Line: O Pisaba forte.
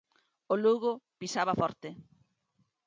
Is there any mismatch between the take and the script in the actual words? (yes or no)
yes